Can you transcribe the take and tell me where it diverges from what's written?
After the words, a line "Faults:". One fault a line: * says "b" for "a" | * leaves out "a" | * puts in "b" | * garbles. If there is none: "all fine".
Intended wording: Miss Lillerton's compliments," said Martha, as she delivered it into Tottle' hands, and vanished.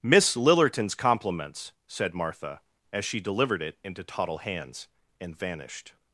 Miss Lillerton's compliments," said Martha, as she delivered it into Tottle' hands, and vanished.
Faults:
all fine